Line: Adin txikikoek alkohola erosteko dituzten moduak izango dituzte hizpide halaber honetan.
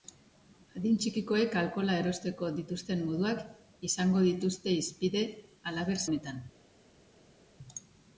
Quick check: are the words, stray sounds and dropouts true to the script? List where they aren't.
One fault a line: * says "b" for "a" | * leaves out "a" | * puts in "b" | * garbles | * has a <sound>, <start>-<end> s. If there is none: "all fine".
all fine